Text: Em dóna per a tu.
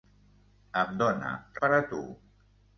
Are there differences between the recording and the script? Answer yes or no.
no